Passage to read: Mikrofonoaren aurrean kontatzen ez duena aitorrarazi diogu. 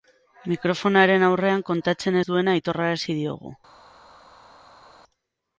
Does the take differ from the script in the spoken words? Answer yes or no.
no